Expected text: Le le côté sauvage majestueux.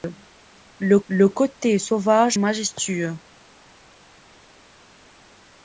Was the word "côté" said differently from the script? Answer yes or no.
no